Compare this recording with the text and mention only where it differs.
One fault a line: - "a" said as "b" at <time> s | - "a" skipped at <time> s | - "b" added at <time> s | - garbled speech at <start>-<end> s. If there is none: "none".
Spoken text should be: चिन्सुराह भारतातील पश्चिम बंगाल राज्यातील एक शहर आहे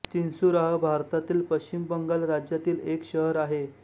none